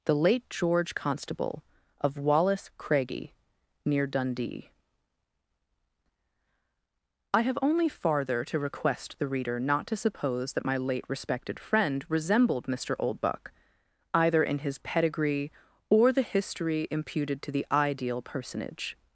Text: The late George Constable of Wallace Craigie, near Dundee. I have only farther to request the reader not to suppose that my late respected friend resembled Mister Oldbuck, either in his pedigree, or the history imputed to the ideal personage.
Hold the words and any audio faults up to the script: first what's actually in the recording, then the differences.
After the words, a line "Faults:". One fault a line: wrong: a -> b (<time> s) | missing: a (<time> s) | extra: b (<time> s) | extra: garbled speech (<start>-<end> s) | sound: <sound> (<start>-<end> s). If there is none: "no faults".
The late George Constable of Wallace Craigie, near Dundee. I have only farther to request the reader not to suppose that my late respected friend resembled Mister Oldbuck, either in his pedigree, or the history imputed to the ideal personage.
Faults:
no faults